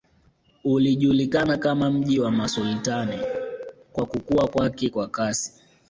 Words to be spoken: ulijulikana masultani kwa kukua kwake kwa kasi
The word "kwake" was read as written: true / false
true